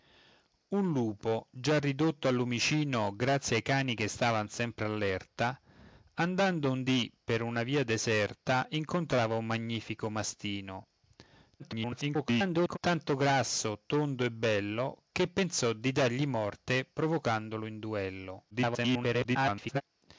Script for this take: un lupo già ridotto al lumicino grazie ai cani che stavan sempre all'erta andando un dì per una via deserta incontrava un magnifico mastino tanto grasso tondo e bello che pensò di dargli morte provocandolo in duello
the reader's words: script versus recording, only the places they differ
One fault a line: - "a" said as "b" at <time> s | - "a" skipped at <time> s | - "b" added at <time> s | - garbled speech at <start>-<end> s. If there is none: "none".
- garbled speech at 11.6-12.8 s
- garbled speech at 18.5-19.8 s